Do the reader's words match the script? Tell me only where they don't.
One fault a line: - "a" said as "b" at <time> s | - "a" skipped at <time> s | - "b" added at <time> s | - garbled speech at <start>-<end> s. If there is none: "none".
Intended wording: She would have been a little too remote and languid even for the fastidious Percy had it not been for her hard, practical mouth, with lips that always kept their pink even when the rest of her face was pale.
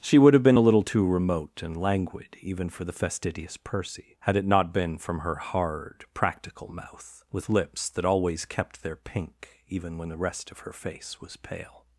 - "for" said as "from" at 5.0 s